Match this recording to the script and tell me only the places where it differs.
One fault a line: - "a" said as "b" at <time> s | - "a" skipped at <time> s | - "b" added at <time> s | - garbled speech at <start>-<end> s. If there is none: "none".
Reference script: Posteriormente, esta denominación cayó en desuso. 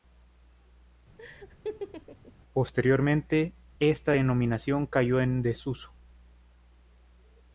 none